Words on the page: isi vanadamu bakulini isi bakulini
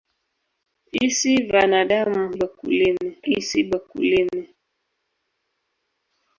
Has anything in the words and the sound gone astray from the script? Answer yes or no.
no